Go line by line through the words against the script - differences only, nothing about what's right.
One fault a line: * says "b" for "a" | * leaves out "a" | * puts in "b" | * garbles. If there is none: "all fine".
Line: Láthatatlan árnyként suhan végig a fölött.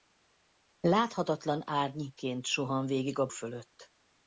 all fine